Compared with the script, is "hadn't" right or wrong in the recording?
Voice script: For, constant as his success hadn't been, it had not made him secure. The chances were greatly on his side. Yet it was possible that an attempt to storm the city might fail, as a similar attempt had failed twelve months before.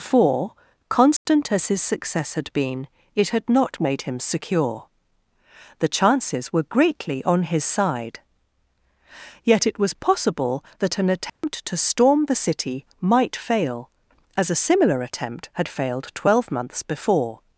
wrong